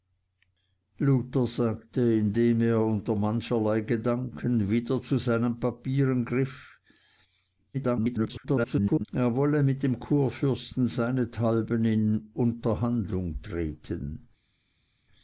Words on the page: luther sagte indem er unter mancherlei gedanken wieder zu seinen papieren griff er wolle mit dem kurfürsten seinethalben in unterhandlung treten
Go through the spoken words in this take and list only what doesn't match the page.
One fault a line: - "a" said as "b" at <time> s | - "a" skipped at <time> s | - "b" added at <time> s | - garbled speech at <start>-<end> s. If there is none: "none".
- garbled speech at 7.7-9.1 s